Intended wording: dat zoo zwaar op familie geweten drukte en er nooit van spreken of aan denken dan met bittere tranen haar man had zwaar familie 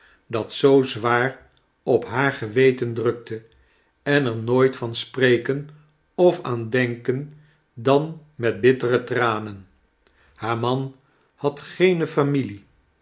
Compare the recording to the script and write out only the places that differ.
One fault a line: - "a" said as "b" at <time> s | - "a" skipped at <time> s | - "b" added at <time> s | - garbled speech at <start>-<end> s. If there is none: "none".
- "familie" said as "haar" at 2.0 s
- "zwaar" said as "geene" at 11.6 s